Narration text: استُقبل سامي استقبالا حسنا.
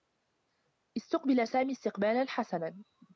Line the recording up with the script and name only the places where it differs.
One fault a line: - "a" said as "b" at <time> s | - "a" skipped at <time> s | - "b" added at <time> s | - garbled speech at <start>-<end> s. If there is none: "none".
none